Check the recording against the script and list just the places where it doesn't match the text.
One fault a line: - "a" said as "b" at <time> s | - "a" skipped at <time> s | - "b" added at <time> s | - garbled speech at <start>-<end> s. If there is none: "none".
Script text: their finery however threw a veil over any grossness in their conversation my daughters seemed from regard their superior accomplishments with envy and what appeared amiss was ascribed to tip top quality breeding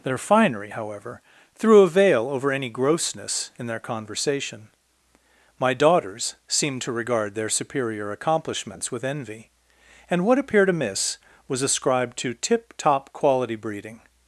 - "from" said as "to" at 6.8 s